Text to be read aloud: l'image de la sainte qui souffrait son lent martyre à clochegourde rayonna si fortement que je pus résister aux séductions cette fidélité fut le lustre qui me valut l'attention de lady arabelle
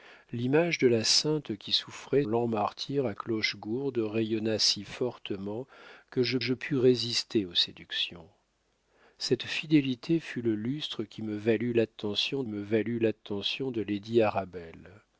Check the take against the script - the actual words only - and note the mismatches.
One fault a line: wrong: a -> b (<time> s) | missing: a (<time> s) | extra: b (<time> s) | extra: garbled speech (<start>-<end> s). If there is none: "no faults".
missing: son (2.2 s)
extra: je (6.4 s)
extra: me valut l'attention (12.5 s)